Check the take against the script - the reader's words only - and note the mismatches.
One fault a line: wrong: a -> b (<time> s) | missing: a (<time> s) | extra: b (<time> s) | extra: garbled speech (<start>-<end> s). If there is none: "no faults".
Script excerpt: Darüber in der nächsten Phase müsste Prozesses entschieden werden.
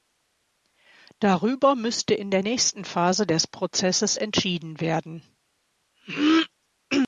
extra: müsste (1.8 s)
wrong: müsste -> des (3.3 s)